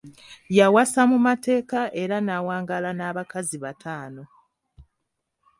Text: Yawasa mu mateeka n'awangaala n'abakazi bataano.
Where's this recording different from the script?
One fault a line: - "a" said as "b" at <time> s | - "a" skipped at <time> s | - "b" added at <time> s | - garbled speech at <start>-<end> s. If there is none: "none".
- "era" added at 2.0 s